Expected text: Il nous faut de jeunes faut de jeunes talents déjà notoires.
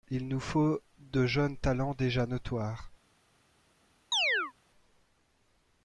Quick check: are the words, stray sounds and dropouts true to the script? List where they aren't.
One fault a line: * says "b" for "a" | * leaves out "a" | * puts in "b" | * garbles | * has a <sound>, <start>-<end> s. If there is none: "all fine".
* leaves out "faut de jeunes"
* has a chirp, 4.1-4.5 s